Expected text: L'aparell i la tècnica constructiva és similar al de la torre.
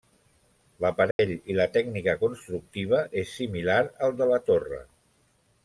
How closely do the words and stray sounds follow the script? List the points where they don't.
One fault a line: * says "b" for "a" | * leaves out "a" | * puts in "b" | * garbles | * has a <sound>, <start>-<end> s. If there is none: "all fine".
* has a dropout, 1.1-1.2 s